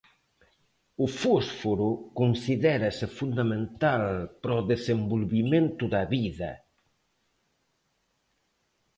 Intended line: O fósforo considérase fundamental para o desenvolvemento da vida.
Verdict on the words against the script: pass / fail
pass